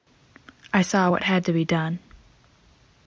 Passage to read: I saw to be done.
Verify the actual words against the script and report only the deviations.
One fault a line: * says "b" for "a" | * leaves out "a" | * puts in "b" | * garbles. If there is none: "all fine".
* puts in "what had"